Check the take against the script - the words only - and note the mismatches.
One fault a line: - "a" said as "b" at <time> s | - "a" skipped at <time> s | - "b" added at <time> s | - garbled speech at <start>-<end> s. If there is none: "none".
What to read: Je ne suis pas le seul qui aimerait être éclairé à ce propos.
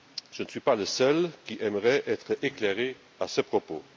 none